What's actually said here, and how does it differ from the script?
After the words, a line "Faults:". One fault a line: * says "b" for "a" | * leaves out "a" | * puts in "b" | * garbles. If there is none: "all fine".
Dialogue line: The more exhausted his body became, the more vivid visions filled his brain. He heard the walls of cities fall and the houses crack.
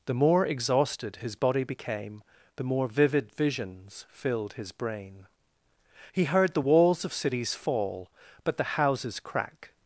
The more exhausted his body became, the more vivid visions filled his brain. He heard the walls of cities fall but the houses crack.
Faults:
* says "but" for "and"